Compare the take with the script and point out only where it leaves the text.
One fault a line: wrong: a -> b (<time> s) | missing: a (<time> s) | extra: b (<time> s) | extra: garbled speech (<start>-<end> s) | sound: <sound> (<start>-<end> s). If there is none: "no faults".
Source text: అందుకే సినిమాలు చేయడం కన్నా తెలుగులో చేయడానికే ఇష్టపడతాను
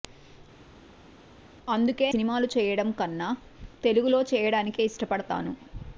no faults